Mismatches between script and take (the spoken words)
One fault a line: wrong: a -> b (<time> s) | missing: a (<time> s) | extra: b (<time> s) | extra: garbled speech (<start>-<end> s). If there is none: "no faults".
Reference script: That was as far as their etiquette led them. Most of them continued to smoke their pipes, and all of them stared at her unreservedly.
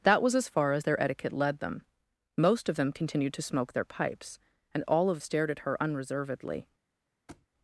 missing: them (5.2 s)